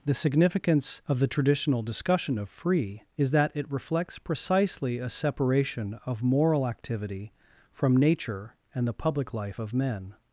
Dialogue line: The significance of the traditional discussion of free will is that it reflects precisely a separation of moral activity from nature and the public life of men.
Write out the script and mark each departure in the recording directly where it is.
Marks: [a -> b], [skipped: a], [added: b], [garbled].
The significance of the traditional discussion of free [skipped: will] is that it reflects precisely a separation of moral activity from nature and the public life of men.